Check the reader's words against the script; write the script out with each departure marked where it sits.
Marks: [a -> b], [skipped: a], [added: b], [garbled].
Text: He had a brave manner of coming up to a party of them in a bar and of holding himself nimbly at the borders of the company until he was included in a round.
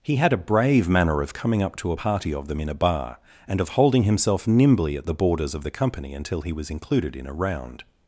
He had a brave manner of coming up to a party of them in a bar and of holding himself nimbly at the borders of the company until he was included in a round.